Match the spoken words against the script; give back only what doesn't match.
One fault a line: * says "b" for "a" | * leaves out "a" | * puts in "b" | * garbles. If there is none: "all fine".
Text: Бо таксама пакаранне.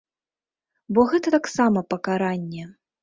* puts in "гэта"